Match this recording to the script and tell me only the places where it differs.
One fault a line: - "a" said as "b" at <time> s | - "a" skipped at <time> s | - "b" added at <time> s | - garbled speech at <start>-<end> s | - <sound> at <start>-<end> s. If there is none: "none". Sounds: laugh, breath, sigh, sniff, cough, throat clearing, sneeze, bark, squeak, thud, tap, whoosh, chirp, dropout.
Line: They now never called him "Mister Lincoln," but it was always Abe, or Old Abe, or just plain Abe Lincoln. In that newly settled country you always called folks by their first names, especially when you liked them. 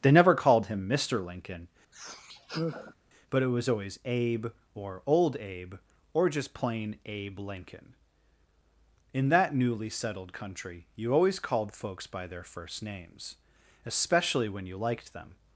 - "now" skipped at 0.1 s
- sigh at 1.9-3.0 s